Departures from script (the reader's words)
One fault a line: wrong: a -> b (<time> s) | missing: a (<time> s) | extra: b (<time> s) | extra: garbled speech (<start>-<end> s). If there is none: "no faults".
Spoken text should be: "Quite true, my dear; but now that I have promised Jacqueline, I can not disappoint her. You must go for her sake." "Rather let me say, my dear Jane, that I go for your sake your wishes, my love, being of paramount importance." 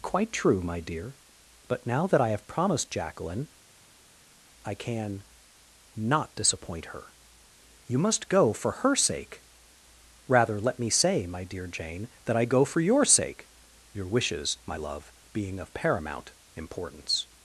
no faults